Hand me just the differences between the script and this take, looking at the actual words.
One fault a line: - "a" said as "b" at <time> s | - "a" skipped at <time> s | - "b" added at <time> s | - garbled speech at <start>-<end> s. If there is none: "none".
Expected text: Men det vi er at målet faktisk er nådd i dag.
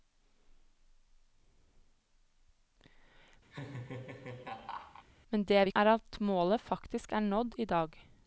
none